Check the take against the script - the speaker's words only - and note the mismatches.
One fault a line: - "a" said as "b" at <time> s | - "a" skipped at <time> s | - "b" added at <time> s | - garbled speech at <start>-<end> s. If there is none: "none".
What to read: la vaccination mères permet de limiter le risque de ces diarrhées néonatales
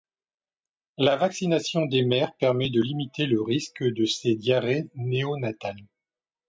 - "des" added at 1.9 s